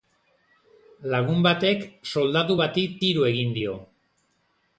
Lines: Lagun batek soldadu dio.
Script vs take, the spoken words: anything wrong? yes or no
yes